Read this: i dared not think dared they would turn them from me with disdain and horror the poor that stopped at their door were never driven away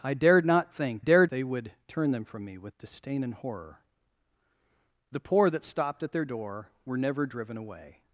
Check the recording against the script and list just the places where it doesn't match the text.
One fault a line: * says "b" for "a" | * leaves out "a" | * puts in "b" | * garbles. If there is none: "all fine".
all fine